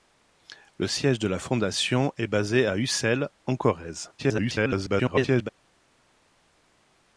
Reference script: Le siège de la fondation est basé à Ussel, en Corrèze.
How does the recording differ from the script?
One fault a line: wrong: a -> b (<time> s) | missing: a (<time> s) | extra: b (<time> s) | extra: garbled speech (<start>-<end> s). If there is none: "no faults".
extra: garbled speech (4.2-5.5 s)